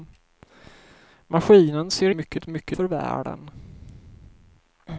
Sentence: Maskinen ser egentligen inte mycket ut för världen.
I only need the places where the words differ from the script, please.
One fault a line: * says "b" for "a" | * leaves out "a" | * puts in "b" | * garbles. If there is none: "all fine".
* says "mycket" for "egentligen"
* leaves out "ut"